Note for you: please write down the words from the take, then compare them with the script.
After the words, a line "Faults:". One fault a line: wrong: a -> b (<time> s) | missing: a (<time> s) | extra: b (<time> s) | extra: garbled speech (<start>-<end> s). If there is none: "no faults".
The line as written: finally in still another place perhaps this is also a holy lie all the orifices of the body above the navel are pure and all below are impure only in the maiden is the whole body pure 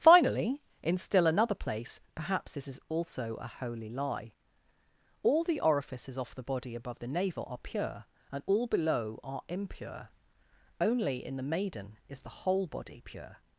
finally in still another place perhaps this is also a holy lie all the orifices off the body above the navel are pure and all below are impure only in the maiden is the whole body pure
Faults:
wrong: of -> off (6.2 s)